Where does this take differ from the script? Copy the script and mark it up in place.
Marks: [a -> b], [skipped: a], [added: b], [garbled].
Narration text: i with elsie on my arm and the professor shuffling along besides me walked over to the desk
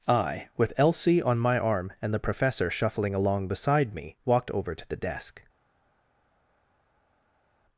i with elsie on my arm and the professor shuffling along [besides -> beside] me walked over to the desk